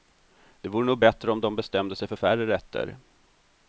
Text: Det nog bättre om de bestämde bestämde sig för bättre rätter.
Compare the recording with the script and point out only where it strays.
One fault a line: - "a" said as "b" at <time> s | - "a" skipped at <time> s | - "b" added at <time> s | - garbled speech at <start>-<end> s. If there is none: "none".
- "vore" added at 0.7 s
- "bestämde" skipped at 1.9 s
- "bättre" said as "färre" at 2.1 s